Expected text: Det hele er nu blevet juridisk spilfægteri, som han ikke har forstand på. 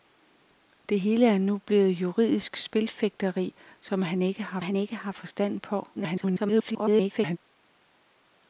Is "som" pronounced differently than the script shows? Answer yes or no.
no